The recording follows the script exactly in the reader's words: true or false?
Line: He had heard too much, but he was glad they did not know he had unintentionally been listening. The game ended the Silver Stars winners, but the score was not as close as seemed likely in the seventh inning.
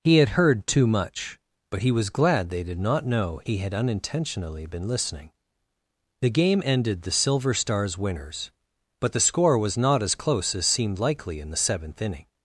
true